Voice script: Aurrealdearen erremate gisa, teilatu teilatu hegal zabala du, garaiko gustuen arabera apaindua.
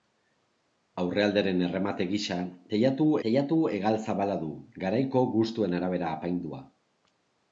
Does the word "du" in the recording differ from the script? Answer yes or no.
no